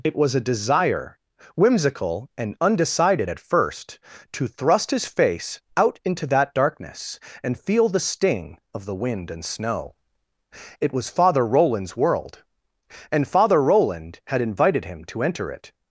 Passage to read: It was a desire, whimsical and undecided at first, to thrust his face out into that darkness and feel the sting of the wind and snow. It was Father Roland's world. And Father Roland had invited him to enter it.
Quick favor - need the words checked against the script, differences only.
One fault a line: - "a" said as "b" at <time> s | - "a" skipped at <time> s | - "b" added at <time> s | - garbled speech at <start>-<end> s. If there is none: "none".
none